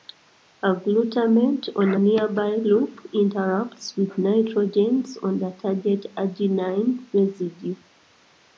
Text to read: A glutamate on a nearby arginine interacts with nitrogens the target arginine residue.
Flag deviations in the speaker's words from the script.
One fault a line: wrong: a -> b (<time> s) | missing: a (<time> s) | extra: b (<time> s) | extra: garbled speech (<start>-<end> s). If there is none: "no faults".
wrong: arginine -> loop (2.6 s)
extra: on (5.2 s)